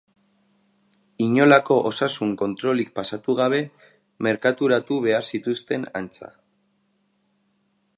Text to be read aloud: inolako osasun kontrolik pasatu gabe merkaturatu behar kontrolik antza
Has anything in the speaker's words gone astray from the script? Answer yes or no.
yes